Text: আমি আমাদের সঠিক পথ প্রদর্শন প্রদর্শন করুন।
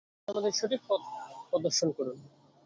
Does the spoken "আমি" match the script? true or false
false